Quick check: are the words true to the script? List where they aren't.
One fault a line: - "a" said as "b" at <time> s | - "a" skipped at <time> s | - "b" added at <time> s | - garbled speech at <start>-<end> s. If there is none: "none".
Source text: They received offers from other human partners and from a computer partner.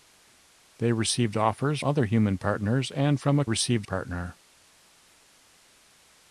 - "from" skipped at 1.8 s
- "computer" said as "received" at 3.4 s